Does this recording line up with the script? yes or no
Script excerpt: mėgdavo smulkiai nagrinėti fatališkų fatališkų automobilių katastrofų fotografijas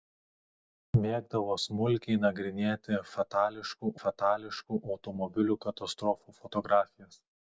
yes